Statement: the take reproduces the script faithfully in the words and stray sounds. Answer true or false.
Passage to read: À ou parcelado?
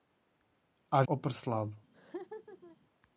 false